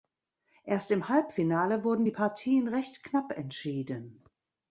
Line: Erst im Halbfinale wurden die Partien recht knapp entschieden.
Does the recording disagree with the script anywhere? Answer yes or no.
no